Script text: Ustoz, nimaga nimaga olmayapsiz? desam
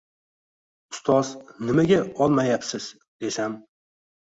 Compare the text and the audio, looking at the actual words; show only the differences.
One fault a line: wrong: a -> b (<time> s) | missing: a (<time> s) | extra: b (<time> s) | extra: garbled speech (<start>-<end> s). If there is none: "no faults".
missing: nimaga (2.0 s)